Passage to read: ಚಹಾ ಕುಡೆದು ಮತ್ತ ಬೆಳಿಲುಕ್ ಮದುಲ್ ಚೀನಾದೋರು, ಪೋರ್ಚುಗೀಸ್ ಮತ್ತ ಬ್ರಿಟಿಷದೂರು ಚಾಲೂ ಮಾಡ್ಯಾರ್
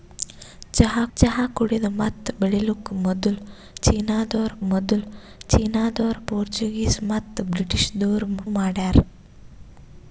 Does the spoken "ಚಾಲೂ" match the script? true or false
false